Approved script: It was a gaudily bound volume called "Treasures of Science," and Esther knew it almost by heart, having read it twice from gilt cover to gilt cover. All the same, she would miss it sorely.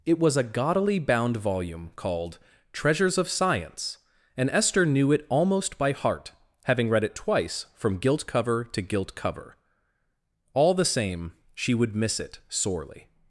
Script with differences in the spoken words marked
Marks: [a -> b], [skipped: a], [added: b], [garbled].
It was a gaudily bound volume called "Treasures of Science," and Esther knew it almost by heart, having read it twice from gilt cover to gilt cover. All the same, she would miss it sorely.